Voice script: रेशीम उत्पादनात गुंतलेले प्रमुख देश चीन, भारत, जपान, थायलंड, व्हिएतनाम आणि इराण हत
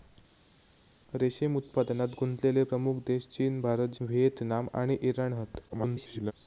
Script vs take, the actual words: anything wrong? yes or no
yes